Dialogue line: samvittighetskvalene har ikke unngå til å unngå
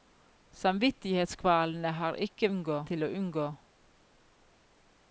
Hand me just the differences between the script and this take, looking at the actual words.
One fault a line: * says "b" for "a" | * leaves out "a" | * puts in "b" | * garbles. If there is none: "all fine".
all fine